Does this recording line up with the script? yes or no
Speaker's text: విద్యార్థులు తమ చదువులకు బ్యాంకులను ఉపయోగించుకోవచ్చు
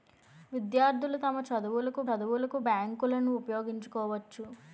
no